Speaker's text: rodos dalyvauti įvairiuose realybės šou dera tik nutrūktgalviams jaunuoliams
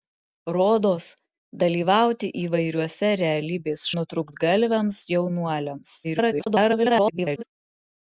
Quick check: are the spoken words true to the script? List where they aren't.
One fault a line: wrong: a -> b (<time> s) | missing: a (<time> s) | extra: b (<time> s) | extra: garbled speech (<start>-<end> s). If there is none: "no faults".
missing: šou dera tik (3.8 s)
extra: garbled speech (6.0-7.4 s)